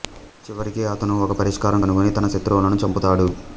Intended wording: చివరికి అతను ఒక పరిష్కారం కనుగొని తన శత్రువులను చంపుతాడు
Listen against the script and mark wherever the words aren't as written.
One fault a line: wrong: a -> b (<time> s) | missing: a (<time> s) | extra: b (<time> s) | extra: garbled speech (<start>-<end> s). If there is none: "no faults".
no faults